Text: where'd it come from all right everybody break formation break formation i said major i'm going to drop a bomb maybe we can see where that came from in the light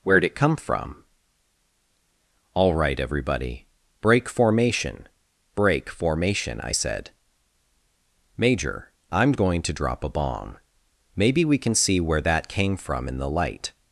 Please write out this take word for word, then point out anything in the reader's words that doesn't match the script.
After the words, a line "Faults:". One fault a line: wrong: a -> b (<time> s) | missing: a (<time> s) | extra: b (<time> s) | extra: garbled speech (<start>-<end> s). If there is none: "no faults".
where'd it come from all right everybody break formation break formation i said major i'm going to drop a bomb maybe we can see where that came from in the light
Faults:
no faults